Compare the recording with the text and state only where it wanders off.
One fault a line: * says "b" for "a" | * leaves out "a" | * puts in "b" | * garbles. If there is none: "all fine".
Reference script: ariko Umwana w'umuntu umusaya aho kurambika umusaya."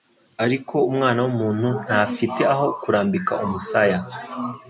* says "ntafite" for "umusaya"